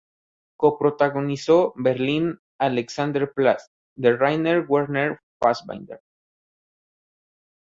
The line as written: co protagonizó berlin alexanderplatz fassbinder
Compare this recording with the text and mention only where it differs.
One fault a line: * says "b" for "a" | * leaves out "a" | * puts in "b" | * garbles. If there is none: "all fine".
* puts in "de rainer werner"